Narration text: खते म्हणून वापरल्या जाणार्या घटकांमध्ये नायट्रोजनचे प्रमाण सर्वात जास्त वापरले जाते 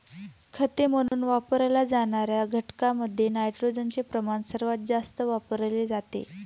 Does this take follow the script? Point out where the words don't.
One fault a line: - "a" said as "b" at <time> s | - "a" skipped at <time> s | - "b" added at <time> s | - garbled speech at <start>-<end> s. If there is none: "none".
none